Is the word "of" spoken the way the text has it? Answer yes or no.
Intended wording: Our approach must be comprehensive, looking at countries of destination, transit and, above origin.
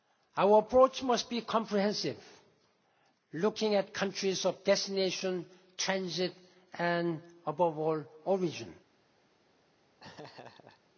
yes